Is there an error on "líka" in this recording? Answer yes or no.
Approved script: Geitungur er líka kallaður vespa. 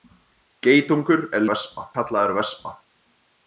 yes